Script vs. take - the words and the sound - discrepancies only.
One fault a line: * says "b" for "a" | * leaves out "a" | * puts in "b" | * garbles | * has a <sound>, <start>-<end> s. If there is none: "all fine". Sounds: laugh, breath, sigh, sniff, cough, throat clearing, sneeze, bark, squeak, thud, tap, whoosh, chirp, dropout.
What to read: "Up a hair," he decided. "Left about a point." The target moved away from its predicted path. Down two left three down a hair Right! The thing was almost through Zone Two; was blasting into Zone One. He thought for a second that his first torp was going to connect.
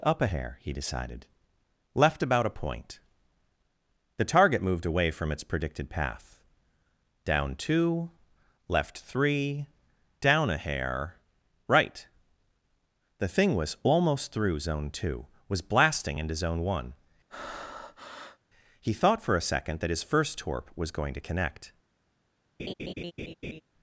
* has a breath, 17.3-18.4 s
* has a laugh, 22.6-23.6 s